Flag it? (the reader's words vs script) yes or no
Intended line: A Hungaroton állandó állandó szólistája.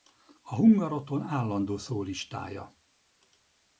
yes